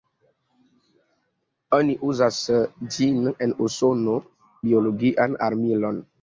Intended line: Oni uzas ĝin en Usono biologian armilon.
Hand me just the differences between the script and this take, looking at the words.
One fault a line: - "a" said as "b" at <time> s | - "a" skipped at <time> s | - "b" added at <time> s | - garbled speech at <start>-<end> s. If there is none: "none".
none